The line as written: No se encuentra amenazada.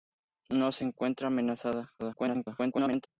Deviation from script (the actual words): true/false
true